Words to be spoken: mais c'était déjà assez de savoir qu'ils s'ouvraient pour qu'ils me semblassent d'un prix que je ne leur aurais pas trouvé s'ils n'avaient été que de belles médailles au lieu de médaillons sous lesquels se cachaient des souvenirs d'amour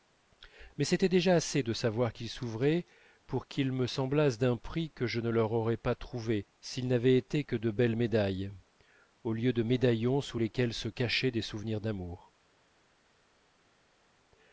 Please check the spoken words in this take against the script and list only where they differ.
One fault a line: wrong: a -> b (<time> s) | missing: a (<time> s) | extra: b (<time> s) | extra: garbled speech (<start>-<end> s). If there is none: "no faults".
no faults